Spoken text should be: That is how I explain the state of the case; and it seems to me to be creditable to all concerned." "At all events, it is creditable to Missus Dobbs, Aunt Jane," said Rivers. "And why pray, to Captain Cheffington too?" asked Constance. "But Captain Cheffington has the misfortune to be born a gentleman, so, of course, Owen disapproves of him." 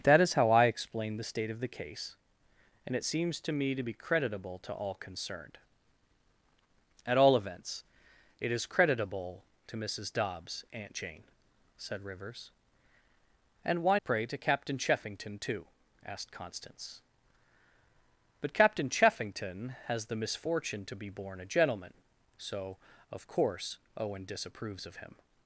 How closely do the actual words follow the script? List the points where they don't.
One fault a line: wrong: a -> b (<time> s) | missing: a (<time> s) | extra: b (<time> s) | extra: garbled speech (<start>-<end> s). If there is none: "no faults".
no faults